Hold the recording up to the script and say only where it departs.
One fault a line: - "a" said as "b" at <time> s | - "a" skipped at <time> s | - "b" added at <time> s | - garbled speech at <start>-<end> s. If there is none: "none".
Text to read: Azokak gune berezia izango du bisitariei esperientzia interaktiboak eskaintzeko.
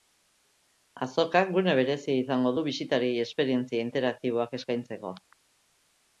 none